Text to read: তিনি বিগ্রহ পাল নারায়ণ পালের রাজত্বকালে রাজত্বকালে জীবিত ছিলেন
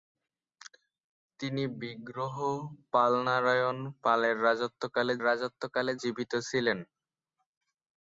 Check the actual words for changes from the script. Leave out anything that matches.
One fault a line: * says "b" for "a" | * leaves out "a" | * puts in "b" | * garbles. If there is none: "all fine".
all fine